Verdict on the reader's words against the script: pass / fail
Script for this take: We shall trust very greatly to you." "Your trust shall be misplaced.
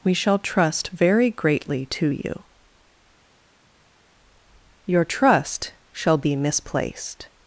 pass